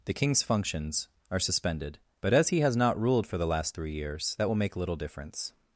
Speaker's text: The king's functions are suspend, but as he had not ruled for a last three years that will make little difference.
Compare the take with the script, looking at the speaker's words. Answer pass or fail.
fail